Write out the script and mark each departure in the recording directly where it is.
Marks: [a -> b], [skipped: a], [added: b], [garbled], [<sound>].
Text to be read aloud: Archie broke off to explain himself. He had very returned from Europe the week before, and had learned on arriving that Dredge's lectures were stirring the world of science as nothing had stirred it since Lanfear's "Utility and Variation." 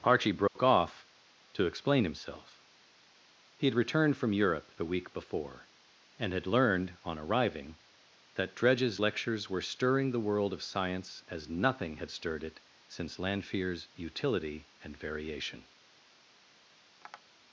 Archie broke [dropout] off to explain himself. He had [skipped: very] returned from Europe the week before, and had learned on arriving that Dredge's lectures were stirring the world of science as nothing had stirred it since Lanfear's "Utility and Variation." [tap]